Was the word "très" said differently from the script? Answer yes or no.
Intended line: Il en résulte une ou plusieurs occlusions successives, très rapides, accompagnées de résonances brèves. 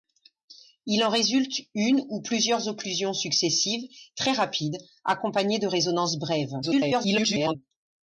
no